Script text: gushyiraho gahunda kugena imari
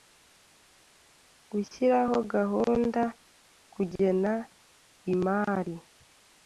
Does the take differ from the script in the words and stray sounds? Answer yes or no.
no